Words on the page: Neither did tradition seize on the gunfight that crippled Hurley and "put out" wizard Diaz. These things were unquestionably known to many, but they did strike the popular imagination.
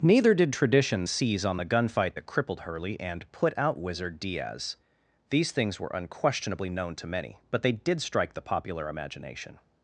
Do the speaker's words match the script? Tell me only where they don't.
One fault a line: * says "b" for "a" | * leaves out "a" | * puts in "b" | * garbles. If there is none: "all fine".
all fine